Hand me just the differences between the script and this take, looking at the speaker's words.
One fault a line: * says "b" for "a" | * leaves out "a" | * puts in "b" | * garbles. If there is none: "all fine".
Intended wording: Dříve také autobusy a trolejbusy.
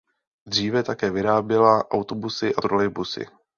* puts in "vyráběla"